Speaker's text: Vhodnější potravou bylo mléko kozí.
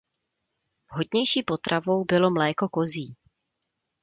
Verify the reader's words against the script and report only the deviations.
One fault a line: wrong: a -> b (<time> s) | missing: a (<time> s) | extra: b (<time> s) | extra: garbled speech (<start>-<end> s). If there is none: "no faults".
no faults